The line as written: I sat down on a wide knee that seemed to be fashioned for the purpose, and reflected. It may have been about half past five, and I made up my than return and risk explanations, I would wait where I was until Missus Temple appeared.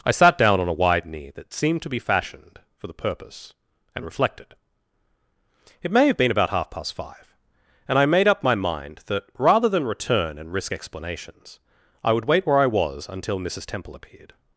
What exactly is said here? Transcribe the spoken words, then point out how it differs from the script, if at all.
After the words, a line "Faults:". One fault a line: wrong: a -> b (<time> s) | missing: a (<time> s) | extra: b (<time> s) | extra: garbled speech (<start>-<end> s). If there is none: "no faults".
I sat down on a wide knee that seemed to be fashioned for the purpose, and reflected. It may have been about half past five, and I made up my mind that, rather than return and risk explanations, I would wait where I was until Missus Temple appeared.
Faults:
extra: mind that rather (8.6 s)